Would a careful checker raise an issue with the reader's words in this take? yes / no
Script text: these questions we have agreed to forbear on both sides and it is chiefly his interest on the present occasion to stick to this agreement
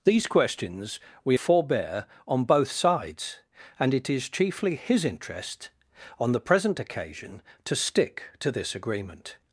yes